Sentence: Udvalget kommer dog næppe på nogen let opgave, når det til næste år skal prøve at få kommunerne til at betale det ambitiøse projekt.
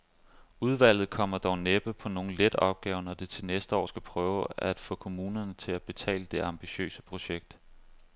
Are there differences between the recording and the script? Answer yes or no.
no